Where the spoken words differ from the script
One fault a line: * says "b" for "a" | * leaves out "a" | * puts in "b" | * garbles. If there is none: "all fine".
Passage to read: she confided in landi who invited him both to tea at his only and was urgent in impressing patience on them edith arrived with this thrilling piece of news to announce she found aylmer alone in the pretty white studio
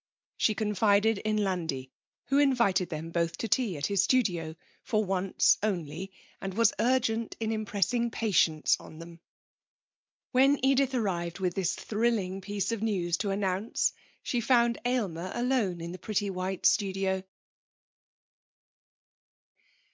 * says "them" for "him"
* puts in "studio for once"
* puts in "when"